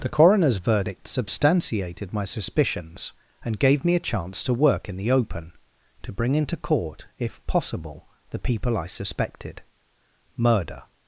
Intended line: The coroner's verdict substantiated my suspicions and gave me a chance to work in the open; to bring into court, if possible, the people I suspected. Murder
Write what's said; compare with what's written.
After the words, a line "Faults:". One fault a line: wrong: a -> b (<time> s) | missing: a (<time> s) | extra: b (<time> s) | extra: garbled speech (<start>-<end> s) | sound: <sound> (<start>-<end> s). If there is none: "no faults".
The coroner's verdict substantiated my suspicions and gave me a chance to work in the open; to bring into court, if possible, the people I suspected. Murder
Faults:
no faults